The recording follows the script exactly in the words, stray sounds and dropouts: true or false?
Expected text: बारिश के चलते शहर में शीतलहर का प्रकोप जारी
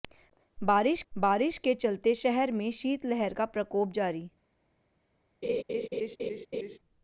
false